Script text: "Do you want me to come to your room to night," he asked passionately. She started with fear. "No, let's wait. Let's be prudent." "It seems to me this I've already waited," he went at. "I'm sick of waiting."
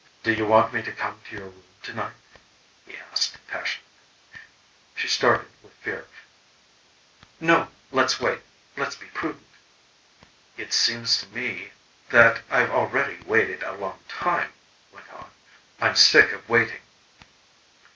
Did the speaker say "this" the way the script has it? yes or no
no